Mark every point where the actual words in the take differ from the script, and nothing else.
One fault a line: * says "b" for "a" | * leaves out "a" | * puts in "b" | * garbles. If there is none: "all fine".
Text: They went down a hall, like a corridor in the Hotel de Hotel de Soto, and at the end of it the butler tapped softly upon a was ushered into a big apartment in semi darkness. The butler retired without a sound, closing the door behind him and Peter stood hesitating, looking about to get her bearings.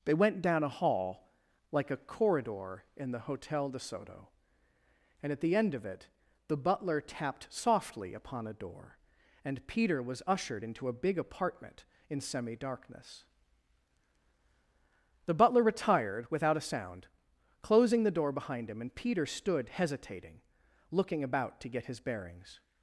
* leaves out "Hotel de"
* puts in "door and Peter"
* says "his" for "her"